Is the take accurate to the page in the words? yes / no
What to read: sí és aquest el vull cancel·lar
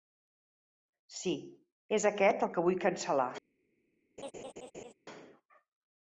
no